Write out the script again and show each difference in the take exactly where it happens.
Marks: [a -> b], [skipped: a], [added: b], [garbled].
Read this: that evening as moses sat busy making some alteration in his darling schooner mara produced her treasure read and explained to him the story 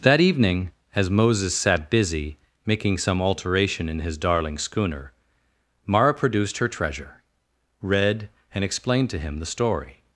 that evening as moses sat busy making some alteration in his darling schooner mara produced her treasure read and explained to him the story